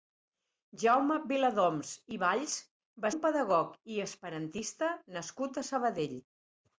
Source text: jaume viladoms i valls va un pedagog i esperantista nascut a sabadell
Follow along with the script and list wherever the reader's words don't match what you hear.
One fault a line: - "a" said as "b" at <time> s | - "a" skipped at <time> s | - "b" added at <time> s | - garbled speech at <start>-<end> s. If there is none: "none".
none